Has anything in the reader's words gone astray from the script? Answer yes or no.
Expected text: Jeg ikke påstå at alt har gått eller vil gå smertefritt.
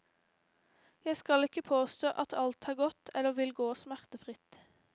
yes